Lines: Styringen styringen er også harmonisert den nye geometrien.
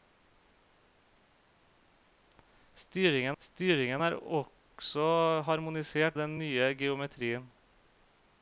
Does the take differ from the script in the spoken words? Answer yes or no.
no